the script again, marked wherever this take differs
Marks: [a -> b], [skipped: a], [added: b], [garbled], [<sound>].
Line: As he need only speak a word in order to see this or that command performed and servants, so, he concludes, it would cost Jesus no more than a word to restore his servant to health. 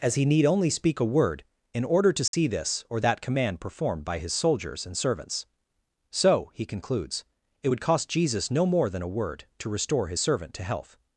As he need only speak a word in order to see [dropout] this or that command performed [added: by his soldiers] and servants, so, he concludes, it would cost Jesus no more than a word to restore his servant to health.